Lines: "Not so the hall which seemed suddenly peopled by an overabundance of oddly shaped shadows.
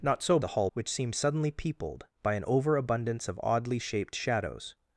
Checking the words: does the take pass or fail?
pass